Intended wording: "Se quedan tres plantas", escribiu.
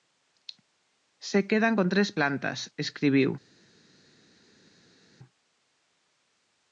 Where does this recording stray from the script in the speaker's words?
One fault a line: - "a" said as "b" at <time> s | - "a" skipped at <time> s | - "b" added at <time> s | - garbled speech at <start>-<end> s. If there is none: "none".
- "con" added at 1.7 s